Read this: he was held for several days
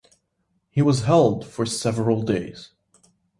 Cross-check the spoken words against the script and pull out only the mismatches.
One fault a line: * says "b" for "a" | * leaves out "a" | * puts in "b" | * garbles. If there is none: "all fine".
all fine